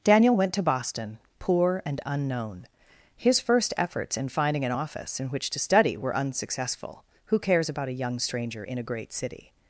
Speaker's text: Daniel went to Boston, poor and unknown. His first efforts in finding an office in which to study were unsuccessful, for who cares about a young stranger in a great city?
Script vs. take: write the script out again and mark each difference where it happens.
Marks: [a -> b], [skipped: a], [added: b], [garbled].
Daniel went to Boston, poor and unknown. His first efforts in finding an office in which to study were unsuccessful, [skipped: for] who cares about a young stranger in a great city?